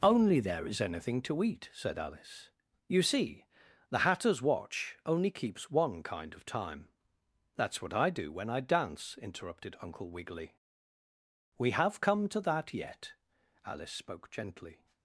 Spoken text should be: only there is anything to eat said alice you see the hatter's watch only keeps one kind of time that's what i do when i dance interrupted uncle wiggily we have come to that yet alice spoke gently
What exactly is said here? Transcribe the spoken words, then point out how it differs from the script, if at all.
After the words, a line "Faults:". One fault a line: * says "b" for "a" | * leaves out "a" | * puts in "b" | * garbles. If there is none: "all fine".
only there is anything to eat said alice you see the hatter's watch only keeps one kind of time that's what i do when i dance interrupted uncle wiggily we have come to that yet alice spoke gently
Faults:
all fine